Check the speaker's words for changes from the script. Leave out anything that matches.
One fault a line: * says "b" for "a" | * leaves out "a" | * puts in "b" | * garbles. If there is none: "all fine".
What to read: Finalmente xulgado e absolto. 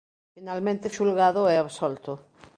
all fine